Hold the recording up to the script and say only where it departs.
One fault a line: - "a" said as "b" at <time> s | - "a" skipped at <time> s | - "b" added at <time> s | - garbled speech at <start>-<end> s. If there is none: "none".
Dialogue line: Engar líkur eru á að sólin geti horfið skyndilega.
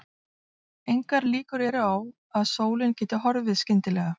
none